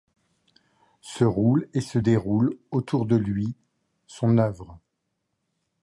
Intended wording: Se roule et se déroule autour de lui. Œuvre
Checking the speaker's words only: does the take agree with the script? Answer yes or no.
no